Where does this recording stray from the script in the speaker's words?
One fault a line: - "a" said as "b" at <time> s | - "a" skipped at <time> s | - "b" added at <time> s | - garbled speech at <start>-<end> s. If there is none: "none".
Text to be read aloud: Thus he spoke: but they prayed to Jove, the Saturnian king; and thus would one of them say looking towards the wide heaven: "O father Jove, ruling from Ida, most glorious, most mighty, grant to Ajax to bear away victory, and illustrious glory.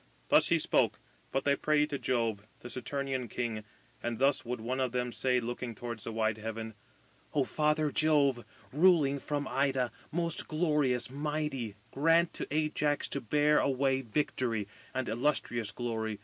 - "most" skipped at 11.1 s